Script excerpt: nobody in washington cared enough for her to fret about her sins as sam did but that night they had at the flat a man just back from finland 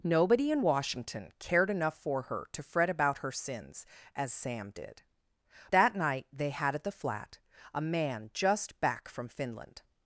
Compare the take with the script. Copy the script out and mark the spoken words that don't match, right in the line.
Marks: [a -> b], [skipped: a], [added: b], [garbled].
nobody in washington cared enough for her to fret about her sins as sam did [skipped: but] that night they had at the flat a man just back from finland